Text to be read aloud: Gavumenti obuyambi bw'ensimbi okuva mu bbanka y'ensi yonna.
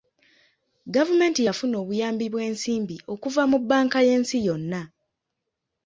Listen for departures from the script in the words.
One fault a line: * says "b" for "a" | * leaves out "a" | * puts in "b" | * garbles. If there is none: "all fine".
* puts in "yafuna"